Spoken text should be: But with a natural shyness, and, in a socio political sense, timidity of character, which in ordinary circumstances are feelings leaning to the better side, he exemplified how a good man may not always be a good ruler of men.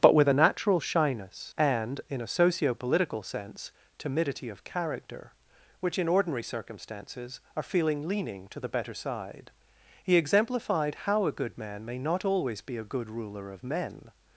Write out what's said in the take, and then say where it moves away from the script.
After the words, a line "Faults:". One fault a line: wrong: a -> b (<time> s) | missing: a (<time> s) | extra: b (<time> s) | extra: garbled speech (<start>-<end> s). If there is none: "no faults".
But with a natural shyness, and, in a socio political sense, timidity of character, which in ordinary circumstances are feeling leaning to the better side, he exemplified how a good man may not always be a good ruler of men.
Faults:
wrong: feelings -> feeling (7.6 s)